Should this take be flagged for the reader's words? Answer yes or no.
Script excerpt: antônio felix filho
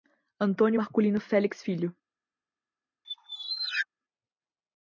yes